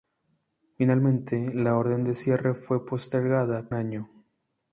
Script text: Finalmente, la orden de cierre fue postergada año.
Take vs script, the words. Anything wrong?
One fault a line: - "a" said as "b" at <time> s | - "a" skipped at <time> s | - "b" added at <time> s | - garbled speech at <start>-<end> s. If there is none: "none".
none